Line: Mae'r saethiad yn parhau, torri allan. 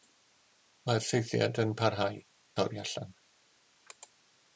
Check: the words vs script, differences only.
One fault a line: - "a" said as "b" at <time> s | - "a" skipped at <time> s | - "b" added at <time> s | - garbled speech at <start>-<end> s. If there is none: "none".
none